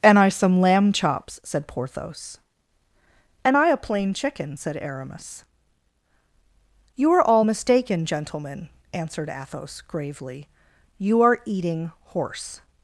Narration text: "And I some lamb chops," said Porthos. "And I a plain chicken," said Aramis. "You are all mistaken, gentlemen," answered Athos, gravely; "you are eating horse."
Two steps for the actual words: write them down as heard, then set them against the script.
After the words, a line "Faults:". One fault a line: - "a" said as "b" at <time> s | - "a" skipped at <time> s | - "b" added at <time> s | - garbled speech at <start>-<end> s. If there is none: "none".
"And I some lamb chops," said Porthos. "And I a plain chicken," said Aramis. "You are all mistaken, gentlemen," answered Athos, gravely; "you are eating horse."
Faults:
none